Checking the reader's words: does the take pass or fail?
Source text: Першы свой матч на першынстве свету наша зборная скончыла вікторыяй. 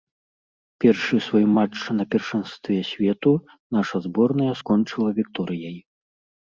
pass